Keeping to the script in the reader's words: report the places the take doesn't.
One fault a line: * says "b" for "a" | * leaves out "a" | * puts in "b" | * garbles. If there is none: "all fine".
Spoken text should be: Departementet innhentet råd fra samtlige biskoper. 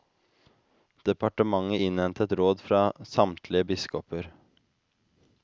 all fine